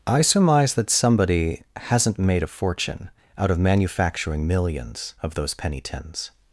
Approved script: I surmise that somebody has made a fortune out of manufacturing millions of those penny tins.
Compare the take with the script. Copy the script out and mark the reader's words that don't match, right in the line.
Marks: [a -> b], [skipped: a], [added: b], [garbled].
I surmise that somebody [has -> hasn't] made a fortune out of manufacturing millions of those penny tins.